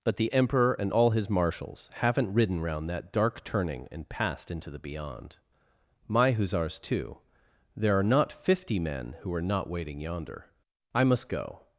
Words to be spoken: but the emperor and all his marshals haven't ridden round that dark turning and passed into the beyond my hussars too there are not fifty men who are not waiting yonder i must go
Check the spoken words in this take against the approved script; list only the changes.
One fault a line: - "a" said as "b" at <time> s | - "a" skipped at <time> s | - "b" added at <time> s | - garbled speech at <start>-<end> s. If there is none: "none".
none